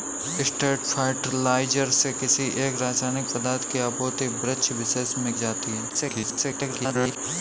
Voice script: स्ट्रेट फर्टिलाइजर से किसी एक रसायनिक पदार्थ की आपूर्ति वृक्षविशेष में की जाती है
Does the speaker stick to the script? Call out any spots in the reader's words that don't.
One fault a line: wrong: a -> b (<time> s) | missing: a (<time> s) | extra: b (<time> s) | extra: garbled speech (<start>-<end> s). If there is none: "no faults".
missing: की (5.3 s)
extra: garbled speech (5.9-7.2 s)